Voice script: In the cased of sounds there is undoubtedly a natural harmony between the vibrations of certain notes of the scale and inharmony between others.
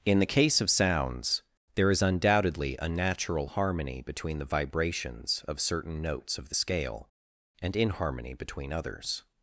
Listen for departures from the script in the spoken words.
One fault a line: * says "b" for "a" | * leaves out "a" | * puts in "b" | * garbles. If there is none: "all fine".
* says "case" for "cased"